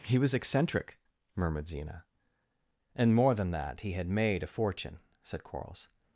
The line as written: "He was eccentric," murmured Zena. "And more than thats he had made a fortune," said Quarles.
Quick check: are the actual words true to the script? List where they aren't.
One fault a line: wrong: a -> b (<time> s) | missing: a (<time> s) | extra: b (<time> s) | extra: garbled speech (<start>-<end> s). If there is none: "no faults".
wrong: thats -> that (3.5 s)